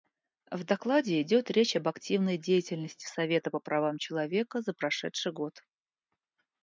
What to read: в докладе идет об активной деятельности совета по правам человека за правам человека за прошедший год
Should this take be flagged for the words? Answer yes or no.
yes